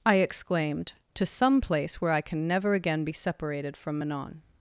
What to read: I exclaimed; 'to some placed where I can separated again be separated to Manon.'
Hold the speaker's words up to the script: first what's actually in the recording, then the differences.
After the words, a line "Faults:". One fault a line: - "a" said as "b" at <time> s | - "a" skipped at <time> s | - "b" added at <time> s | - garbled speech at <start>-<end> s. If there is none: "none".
I exclaimed; 'to some place where I can never again be separated from Manon.'
Faults:
- "placed" said as "place" at 1.6 s
- "separated" said as "never" at 2.5 s
- "to" said as "from" at 3.8 s